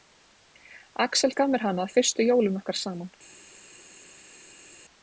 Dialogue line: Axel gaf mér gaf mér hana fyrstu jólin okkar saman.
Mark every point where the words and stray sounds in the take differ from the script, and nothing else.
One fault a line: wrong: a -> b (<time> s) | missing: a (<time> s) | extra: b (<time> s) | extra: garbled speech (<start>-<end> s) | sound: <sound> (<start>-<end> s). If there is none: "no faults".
missing: gaf mér (1.6 s)